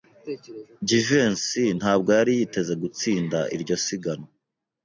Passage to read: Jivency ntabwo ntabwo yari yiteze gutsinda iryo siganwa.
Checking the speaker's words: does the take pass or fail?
fail